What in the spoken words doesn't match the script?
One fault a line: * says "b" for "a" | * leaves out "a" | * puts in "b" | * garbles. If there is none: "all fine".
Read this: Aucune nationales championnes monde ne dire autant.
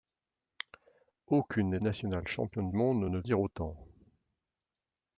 all fine